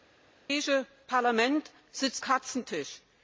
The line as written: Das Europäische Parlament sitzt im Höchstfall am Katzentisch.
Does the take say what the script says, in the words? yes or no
no